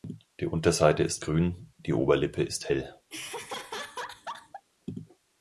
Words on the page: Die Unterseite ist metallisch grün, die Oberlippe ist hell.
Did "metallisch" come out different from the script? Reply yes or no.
yes